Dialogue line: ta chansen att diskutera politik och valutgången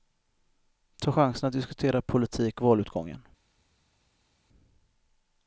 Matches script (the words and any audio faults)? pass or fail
fail